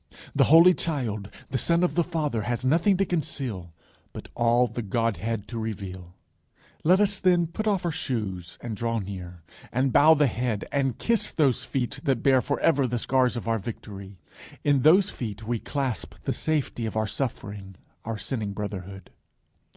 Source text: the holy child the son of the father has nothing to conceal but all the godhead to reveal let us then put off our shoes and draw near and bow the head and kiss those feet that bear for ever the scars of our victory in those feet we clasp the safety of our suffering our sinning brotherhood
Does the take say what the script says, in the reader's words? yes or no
yes